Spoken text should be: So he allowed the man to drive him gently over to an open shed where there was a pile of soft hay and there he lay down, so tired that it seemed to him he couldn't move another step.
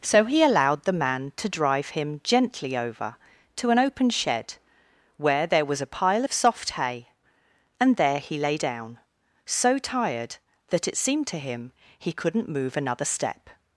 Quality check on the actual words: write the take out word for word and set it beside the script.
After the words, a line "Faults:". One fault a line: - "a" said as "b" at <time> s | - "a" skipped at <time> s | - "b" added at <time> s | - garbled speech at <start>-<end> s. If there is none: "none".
So he allowed the man to drive him gently over to an open shed where there was a pile of soft hay and there he lay down, so tired that it seemed to him he couldn't move another step.
Faults:
none